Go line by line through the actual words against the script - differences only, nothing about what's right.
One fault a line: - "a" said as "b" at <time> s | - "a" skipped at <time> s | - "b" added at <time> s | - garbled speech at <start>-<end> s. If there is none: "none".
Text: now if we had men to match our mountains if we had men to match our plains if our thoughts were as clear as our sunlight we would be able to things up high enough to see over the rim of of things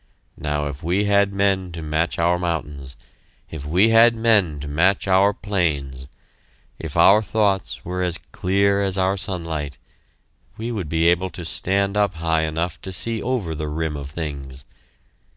- "things" said as "stand" at 11.4 s
- "of" skipped at 14.1 s